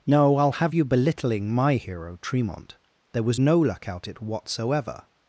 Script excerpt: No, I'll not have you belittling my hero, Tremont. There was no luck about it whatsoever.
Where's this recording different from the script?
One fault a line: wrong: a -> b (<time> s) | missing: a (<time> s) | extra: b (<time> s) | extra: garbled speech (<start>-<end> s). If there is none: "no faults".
missing: not (0.5 s)
wrong: about -> out (3.9 s)